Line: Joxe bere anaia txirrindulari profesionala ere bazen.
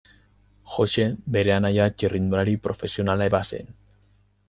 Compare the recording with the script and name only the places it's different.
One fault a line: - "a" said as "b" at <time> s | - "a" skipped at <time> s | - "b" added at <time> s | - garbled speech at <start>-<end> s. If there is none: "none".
- "ere" skipped at 3.3 s